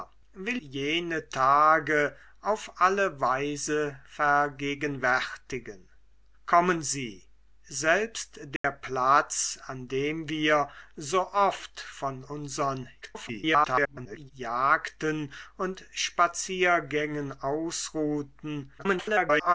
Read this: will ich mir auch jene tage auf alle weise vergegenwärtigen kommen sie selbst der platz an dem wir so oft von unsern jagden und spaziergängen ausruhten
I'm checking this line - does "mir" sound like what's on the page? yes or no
no